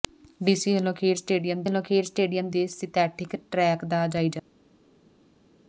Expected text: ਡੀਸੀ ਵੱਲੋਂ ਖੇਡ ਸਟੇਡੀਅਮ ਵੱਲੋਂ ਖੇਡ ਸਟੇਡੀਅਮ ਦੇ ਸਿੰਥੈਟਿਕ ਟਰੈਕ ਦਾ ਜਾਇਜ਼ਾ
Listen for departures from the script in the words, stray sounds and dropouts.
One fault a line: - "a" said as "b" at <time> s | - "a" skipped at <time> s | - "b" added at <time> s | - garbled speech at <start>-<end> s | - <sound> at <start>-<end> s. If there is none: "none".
none